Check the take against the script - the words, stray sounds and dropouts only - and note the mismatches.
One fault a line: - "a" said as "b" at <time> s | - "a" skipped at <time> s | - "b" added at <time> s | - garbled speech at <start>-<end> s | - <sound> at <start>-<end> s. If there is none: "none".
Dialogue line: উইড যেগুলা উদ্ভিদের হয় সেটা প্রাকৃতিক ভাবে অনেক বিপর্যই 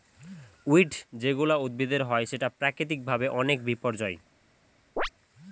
- chirp at 5.0-5.1 s